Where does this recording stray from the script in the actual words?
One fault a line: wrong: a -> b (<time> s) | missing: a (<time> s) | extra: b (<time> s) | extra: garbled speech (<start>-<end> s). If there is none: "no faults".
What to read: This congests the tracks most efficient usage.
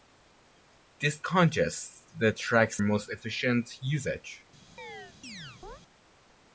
no faults